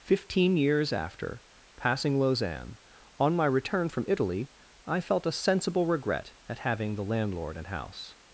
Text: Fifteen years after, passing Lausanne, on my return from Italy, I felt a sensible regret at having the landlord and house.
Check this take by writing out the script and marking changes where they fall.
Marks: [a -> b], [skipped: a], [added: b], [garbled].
Fifteen years after, passing Lausanne, on my return from Italy, I felt a sensible regret at having the landlord and house.